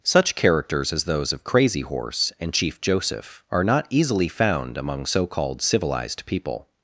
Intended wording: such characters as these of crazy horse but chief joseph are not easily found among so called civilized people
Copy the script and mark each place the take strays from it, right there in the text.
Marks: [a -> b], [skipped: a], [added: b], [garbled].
such characters as [these -> those] of crazy horse [but -> and] chief joseph are not easily found among so called civilized people